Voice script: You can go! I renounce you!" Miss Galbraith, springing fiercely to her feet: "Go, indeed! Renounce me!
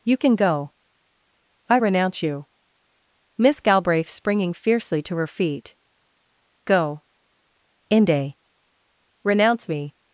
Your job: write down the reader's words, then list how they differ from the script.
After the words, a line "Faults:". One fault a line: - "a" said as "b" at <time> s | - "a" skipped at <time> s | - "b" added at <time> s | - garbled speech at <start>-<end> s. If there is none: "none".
You can go! I renounce you!" Miss Galbraith, springing fiercely to her feet: "Go, inde! Renounce me!
Faults:
- "indeed" said as "inde" at 7.9 s